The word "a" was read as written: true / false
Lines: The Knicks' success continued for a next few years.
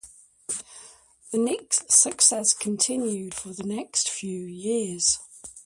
false